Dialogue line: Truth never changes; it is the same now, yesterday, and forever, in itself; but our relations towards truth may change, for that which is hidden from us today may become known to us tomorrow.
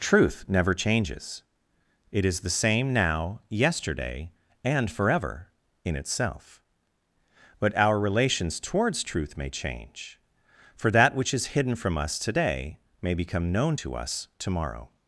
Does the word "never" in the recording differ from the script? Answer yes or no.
no